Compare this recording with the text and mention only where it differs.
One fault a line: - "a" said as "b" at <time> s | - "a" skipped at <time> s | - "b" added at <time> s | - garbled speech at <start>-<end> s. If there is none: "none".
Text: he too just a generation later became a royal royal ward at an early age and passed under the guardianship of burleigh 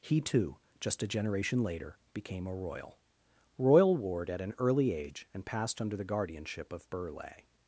none